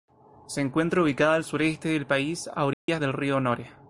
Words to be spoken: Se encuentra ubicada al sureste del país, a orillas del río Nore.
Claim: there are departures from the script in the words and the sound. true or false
true